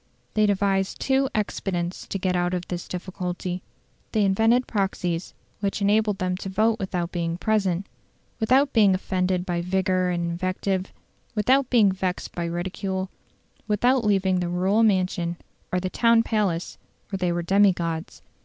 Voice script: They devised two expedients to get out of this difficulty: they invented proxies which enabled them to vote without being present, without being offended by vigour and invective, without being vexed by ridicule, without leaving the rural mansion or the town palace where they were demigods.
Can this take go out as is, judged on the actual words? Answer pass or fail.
pass